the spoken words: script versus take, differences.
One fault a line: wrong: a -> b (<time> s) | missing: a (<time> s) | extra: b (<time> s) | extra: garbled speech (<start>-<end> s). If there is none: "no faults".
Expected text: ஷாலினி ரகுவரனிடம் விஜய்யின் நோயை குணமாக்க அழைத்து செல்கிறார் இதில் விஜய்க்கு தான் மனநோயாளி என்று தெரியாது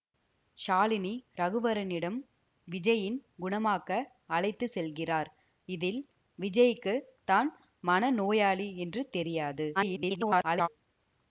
missing: நோயை (3.2 s)
extra: garbled speech (9.7-10.7 s)